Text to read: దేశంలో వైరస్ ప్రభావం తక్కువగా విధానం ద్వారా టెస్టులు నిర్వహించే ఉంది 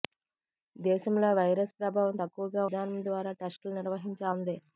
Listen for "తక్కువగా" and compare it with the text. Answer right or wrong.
right